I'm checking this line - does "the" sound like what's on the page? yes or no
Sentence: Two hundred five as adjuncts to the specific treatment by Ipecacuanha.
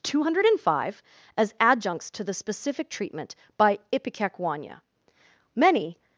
yes